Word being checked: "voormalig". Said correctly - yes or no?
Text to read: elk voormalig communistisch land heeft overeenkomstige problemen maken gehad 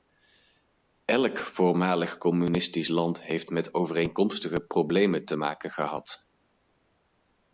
yes